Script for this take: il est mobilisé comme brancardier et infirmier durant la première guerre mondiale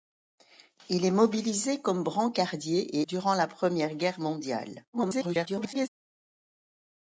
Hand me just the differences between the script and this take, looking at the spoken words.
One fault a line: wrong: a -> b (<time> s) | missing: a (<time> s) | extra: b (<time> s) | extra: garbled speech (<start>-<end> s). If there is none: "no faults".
missing: et infirmier (3.0 s)
extra: garbled speech (4.9-5.9 s)